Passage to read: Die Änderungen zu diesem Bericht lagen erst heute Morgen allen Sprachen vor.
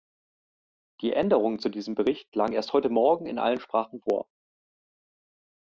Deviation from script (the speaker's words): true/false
true